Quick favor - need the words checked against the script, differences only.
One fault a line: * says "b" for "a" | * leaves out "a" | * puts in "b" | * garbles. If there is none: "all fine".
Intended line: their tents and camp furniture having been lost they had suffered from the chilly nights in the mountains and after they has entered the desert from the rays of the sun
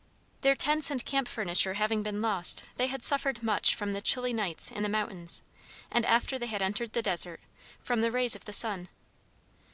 * puts in "much"
* says "had" for "has"